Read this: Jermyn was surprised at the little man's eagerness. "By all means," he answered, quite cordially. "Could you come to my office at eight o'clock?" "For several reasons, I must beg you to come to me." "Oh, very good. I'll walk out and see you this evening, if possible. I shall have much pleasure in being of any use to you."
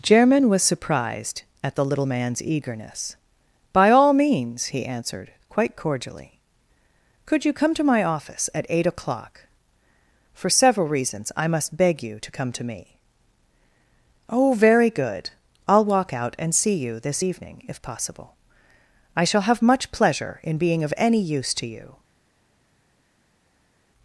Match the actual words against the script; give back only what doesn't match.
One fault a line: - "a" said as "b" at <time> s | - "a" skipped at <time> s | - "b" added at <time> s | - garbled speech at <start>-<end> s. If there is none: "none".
none